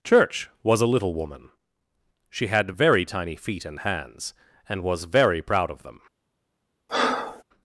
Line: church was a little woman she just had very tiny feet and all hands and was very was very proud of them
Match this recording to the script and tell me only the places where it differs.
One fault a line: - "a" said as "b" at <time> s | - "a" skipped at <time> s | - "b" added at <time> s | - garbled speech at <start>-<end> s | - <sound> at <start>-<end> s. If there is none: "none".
- "just" skipped at 2.5 s
- "all" skipped at 3.8 s
- "was very" skipped at 5.4 s
- breath at 6.9-7.4 s